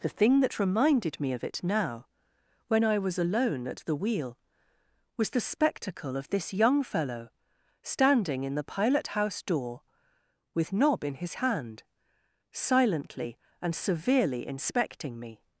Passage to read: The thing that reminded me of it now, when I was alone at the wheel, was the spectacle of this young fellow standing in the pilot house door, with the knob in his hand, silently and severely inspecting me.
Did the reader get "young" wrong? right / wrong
right